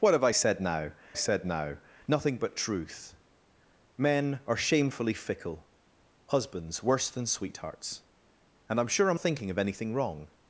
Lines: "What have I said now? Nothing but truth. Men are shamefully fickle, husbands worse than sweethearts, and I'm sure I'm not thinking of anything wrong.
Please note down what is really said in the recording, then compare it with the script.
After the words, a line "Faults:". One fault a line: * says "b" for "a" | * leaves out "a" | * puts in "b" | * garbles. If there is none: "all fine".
"What have I said now said now? Nothing but truth. Men are shamefully fickle, husbands worse than sweethearts, and I'm sure I'm thinking of anything wrong.
Faults:
* puts in "said now"
* leaves out "not"